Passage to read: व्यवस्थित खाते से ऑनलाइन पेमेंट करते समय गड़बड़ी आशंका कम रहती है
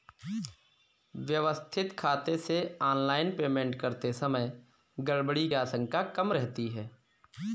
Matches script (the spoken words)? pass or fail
pass